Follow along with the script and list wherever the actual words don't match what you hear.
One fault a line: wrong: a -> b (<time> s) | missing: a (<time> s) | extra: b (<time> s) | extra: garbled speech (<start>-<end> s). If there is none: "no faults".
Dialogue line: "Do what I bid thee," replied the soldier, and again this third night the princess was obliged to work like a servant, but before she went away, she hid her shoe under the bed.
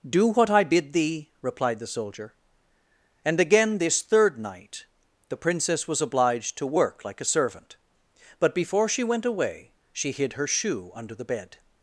no faults